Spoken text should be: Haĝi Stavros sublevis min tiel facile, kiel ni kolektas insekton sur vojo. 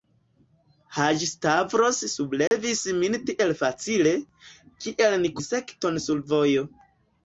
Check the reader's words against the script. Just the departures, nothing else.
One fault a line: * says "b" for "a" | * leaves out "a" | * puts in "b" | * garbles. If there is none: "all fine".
* leaves out "kolektas"